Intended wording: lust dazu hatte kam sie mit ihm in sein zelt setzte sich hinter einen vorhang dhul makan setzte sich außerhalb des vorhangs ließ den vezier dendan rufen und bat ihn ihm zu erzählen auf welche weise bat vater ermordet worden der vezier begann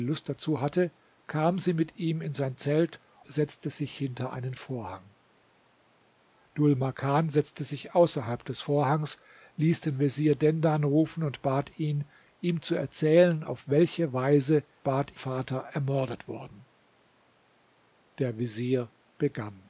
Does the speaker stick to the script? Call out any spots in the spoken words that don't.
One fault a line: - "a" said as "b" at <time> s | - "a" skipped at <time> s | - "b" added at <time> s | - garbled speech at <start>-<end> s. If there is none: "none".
none